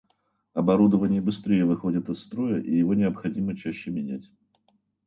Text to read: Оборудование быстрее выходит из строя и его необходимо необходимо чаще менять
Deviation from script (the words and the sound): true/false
true